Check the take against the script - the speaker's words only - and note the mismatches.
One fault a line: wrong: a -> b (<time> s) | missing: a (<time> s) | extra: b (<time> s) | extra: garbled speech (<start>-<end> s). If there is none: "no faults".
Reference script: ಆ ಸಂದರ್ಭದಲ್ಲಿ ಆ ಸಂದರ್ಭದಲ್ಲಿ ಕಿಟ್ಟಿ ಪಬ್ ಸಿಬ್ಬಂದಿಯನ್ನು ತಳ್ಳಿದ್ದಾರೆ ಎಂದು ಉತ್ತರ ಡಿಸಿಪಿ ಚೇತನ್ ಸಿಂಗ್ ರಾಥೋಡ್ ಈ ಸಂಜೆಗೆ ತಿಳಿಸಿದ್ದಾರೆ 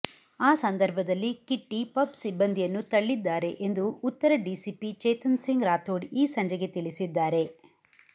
missing: ಆ ಸಂದರ್ಭದಲ್ಲಿ (1.3 s)